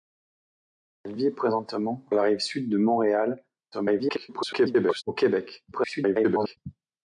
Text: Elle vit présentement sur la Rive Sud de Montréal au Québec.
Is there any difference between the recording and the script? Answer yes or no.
yes